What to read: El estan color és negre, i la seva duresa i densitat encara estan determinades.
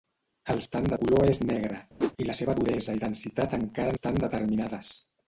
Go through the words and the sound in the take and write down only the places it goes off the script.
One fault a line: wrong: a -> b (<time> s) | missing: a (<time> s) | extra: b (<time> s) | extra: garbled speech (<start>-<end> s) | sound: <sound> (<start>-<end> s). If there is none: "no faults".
sound: whoosh (2.0-2.1 s)